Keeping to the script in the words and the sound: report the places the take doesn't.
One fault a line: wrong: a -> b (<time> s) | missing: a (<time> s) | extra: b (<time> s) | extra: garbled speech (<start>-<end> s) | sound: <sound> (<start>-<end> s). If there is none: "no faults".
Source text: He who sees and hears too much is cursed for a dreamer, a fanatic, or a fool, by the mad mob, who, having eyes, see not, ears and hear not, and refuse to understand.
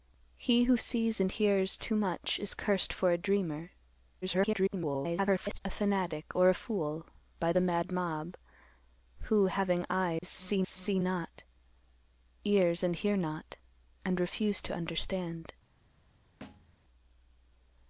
extra: garbled speech (4.2-5.6 s)
sound: dropout (10.2-10.2 s)
extra: see (10.7 s)
sound: thud (16.4-16.8 s)